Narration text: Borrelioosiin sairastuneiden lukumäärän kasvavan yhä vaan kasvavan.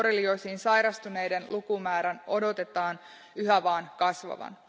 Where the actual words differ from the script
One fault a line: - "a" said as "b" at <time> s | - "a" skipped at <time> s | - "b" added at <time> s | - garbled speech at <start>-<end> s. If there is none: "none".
- "kasvavan" said as "odotetaan" at 2.3 s